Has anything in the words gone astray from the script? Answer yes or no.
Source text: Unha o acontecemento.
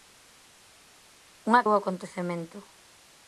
no